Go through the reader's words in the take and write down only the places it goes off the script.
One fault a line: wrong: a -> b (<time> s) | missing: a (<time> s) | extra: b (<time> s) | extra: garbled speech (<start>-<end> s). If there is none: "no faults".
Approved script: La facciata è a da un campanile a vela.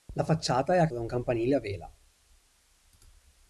no faults